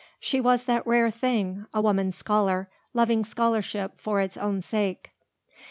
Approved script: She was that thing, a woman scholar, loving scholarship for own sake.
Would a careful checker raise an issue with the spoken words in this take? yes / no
yes